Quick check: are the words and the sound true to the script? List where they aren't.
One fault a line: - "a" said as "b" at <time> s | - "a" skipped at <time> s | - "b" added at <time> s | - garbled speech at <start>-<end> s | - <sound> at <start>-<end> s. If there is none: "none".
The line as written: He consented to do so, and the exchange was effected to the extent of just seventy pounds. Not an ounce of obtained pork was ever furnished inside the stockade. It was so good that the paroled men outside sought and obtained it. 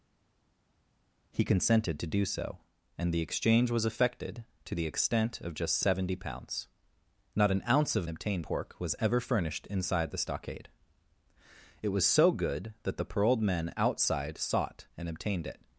none